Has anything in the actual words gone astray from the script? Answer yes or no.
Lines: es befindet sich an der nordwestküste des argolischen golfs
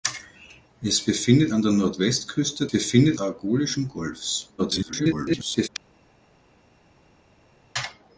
yes